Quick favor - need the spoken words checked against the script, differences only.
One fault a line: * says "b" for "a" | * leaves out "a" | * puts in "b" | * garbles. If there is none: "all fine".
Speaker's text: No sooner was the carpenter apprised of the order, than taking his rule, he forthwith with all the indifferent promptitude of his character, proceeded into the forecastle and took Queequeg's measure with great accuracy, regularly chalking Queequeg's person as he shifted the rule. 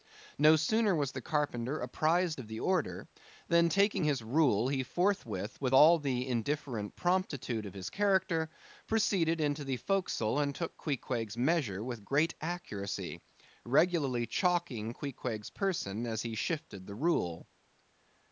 all fine